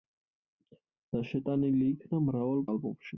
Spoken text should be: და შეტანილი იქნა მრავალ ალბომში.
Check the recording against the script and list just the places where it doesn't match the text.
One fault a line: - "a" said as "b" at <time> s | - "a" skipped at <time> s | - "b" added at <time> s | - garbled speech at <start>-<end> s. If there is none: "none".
none